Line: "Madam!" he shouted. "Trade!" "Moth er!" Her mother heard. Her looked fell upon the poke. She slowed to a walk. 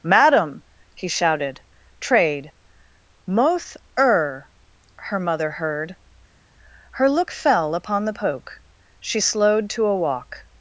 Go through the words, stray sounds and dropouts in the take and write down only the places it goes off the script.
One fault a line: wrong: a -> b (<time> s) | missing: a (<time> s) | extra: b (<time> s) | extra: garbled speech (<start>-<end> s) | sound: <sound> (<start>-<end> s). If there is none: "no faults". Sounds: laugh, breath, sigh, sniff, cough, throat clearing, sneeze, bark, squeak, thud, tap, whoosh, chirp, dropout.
wrong: looked -> look (7.1 s)